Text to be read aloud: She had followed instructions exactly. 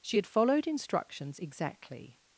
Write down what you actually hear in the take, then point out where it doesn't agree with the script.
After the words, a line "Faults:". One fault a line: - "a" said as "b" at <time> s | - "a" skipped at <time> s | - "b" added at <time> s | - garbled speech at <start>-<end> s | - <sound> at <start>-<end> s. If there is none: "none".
She had followed instructions exactly.
Faults:
none